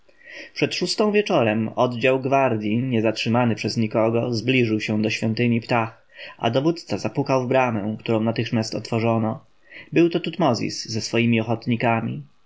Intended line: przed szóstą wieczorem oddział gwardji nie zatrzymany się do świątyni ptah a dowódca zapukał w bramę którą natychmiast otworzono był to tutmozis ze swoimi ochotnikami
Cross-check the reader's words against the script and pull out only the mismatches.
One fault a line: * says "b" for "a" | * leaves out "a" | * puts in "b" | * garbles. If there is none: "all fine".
* puts in "przez nikogo zbliżył"